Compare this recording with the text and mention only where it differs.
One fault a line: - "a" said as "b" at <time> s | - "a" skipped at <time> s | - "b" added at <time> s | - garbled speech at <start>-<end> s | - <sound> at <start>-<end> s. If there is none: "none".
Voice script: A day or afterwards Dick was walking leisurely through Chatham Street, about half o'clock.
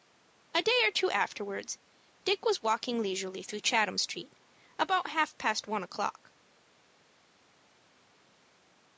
- "two" added at 0.9 s
- "past one" added at 5.4 s